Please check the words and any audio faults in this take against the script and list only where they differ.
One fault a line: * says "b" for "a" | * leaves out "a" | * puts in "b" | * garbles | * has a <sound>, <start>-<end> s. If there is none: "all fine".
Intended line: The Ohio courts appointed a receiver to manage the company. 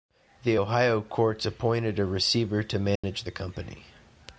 * has a dropout, 3.0-3.0 s